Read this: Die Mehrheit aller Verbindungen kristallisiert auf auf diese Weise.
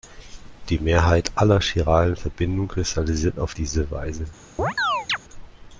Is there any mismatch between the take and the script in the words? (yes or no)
yes